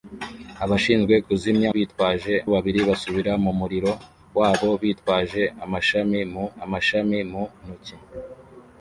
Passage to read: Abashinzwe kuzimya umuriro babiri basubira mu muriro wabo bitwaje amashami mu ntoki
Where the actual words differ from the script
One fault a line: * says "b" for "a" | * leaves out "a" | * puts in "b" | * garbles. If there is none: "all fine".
* says "bitwaje" for "umuriro"
* puts in "amashami mu"